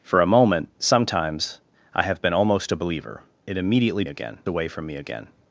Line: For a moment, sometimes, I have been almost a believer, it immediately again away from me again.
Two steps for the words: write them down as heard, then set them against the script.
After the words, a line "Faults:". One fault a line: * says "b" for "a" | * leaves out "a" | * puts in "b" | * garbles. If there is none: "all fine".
For a moment, sometimes, I have been almost a believer, it immediately again away from me again.
Faults:
all fine